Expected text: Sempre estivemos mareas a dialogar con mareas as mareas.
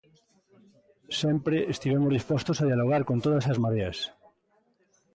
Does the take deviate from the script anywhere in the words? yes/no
yes